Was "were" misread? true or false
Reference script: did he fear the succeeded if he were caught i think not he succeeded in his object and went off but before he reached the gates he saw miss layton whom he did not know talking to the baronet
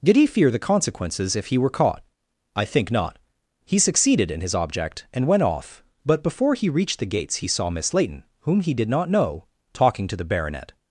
false